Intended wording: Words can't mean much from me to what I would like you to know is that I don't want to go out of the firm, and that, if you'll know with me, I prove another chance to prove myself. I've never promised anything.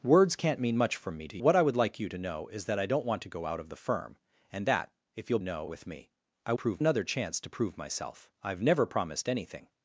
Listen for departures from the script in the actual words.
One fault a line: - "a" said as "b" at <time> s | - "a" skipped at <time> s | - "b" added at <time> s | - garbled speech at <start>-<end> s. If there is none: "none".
none